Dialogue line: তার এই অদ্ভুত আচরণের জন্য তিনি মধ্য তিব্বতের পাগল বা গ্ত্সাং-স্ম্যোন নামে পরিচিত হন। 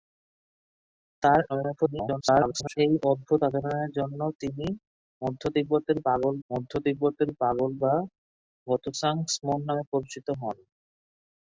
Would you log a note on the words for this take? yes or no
yes